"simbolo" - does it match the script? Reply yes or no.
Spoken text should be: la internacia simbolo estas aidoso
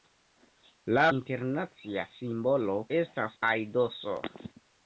yes